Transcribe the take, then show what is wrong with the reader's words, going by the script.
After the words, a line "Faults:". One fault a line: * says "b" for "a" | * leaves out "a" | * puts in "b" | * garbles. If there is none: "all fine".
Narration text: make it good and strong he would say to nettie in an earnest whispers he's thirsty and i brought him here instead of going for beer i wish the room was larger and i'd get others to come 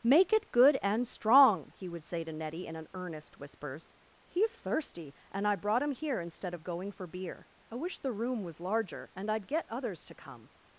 make it good and strong he would say to nettie in an earnest whispers he's thirsty and i brought him here instead of going for beer i wish the room was larger and i'd get others to come
Faults:
all fine